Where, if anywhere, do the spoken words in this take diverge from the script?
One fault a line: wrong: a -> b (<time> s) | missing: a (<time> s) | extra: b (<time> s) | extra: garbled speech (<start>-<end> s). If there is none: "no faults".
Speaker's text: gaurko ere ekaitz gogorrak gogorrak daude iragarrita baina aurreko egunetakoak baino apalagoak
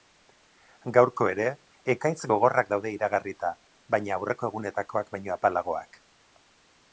missing: gogorrak (2.7 s)